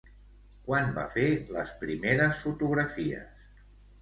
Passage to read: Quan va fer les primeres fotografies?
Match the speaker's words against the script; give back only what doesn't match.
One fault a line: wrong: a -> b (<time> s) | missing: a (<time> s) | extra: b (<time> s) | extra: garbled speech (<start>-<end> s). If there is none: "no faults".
no faults